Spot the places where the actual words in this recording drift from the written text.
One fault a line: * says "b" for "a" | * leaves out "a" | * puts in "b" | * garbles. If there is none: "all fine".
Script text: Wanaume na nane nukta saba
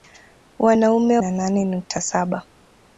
all fine